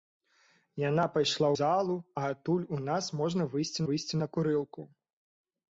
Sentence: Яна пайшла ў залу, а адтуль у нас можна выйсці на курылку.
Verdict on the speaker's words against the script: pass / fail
fail